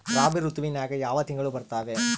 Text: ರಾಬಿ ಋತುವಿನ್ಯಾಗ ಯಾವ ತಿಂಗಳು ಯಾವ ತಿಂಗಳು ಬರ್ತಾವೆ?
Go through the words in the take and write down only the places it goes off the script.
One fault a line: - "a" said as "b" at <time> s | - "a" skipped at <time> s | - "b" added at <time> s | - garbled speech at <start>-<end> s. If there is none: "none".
- "ಯಾವ ತಿಂಗಳು" skipped at 1.5 s